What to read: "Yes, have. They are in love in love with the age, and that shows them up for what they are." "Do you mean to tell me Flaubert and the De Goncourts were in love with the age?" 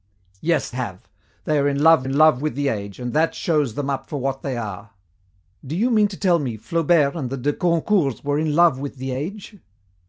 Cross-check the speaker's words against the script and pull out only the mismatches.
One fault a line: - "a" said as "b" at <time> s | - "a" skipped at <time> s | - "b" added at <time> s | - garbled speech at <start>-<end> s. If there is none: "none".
none